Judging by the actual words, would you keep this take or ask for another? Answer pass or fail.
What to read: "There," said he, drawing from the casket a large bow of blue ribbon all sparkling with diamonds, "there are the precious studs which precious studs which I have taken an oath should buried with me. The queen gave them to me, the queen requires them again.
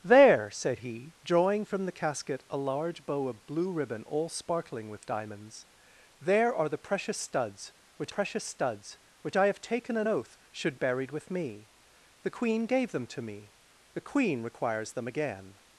pass